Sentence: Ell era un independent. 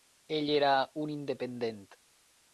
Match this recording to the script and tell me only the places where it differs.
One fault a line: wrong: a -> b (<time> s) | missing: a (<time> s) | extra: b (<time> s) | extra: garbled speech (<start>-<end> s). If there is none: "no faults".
no faults